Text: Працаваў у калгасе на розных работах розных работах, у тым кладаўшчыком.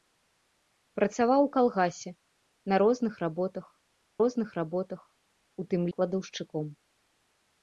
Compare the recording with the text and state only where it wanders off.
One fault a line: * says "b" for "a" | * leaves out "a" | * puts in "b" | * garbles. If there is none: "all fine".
all fine